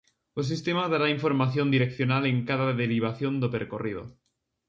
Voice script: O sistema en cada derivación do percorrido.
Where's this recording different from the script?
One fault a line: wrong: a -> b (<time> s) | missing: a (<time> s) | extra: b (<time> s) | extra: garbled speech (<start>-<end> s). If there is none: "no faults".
extra: dará información direccional (0.9 s)